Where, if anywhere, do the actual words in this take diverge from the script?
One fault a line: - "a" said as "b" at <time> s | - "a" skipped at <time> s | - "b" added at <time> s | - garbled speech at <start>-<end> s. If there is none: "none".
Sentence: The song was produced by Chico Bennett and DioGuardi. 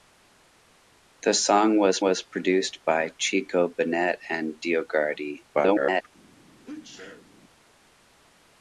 - "was" added at 2.0 s
- garbled speech at 5.5-6.1 s